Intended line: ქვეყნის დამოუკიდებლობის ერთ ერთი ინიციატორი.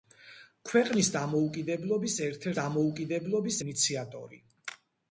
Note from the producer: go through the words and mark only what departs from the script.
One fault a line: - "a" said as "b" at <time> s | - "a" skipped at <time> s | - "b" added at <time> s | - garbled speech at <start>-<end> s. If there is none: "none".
- "ერთი" said as "დამოუკიდებლობის" at 2.6 s